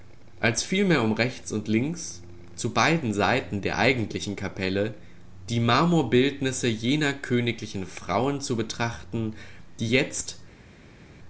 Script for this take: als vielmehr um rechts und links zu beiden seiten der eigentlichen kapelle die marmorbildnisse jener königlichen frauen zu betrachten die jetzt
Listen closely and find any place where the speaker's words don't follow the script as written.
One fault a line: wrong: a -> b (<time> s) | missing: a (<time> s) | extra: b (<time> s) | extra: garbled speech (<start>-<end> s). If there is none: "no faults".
no faults